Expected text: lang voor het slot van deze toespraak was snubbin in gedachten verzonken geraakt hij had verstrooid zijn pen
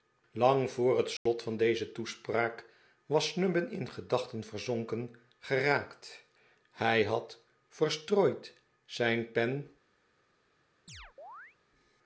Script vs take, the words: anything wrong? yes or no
no